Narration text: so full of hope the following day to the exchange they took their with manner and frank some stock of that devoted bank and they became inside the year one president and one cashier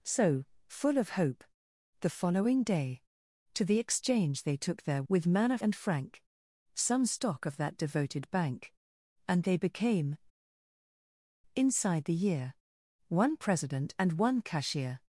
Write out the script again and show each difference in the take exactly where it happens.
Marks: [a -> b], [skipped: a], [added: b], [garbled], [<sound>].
so full of hope the following day to the exchange they took their with manner and frank some stock of that devoted bank and they became inside the year one president and one cashier